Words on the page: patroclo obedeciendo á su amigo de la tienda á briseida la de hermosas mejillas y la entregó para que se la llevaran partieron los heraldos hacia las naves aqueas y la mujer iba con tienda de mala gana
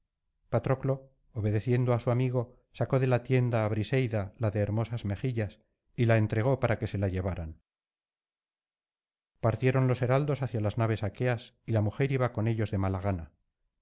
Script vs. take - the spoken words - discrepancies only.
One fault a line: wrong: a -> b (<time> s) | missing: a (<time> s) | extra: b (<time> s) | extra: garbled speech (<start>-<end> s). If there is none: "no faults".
extra: sacó (2.8 s)
wrong: tienda -> ellos (12.5 s)